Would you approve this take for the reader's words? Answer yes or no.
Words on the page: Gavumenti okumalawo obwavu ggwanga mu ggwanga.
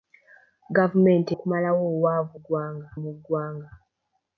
yes